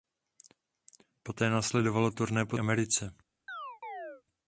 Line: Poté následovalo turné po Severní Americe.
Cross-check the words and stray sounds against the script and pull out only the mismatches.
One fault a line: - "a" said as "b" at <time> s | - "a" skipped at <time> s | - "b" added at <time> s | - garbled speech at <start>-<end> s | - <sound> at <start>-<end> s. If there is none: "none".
- "Severní" skipped at 2.6 s
- chirp at 3.5-4.2 s